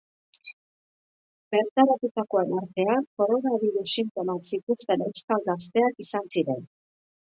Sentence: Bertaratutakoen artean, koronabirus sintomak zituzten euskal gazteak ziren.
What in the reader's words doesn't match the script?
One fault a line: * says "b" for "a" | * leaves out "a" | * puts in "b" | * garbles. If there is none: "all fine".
* puts in "izan"